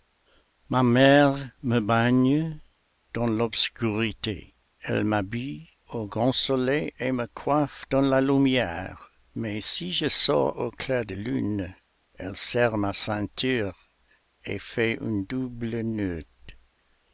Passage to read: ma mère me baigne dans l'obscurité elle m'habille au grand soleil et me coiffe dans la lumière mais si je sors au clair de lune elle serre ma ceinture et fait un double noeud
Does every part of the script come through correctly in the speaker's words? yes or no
yes